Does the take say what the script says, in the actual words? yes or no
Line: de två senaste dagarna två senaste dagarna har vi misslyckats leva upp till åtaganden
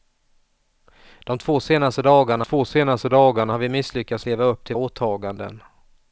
yes